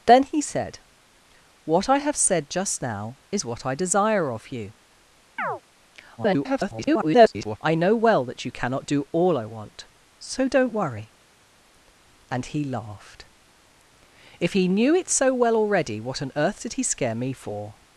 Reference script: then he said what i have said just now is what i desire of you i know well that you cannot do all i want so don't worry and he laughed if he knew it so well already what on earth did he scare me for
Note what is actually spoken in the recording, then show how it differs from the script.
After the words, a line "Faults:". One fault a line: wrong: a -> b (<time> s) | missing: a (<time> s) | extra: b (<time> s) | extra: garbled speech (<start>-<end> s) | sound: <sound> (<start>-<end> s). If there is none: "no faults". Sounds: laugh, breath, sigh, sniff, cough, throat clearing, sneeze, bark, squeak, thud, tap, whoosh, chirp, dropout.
then he said what i have said just now is what i desire of you [garbled] i know well that you cannot do all i want so don't worry and he laughed if he knew it so well already what on earth did he scare me for
Faults:
sound: chirp (5.4-5.6 s)
extra: garbled speech (6.2-7.6 s)